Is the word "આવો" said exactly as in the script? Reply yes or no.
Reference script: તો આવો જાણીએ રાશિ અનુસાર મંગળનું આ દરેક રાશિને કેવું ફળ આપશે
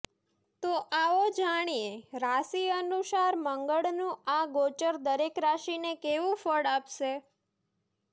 yes